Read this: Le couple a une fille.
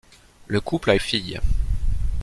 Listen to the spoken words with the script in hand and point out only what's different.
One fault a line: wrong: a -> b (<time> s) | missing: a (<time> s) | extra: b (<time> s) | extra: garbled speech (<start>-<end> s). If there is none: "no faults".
missing: une (1.0 s)